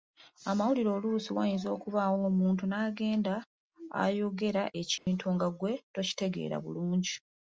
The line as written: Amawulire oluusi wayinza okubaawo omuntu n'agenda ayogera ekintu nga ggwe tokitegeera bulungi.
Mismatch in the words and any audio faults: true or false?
true